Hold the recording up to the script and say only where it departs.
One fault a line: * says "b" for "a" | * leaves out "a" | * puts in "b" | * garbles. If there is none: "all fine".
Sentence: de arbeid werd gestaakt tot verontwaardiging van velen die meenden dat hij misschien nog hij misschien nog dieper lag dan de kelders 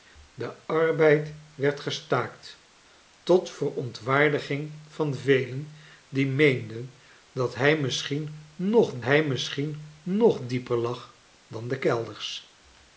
all fine